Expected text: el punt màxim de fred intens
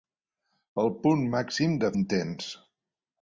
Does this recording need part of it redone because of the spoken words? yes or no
yes